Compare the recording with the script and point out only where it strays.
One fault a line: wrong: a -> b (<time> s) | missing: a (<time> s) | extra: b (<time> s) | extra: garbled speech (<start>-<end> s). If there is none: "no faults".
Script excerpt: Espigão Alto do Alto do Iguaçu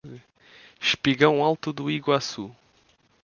missing: Alto do (1.9 s)